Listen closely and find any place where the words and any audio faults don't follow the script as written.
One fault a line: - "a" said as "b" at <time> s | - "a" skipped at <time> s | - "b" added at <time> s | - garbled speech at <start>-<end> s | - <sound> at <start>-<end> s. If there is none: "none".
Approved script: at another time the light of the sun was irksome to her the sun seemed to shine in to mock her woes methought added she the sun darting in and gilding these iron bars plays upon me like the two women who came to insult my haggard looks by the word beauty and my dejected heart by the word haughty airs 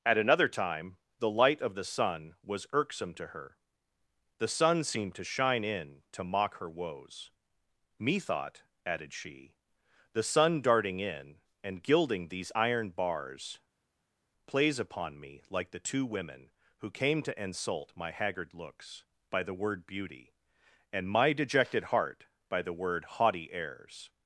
none